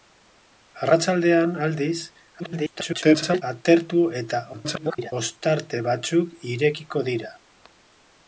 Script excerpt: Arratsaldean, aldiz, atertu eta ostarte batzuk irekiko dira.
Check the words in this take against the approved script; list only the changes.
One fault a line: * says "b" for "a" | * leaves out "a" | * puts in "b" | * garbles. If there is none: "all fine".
* garbles
* garbles